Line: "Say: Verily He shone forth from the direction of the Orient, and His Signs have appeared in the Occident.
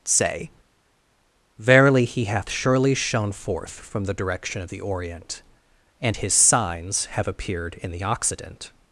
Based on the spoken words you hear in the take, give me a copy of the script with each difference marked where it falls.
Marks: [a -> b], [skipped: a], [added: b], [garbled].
"Say: Verily He [added: hath surely] shone forth from the direction of the Orient, and His Signs have appeared in the Occident.